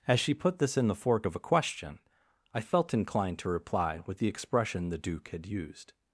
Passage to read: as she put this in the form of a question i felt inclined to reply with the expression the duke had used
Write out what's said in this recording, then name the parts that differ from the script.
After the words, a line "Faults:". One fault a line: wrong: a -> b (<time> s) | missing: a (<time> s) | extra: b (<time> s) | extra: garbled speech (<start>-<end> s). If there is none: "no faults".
as she put this in the fork of a question i felt inclined to reply with the expression the duke had used
Faults:
wrong: form -> fork (0.9 s)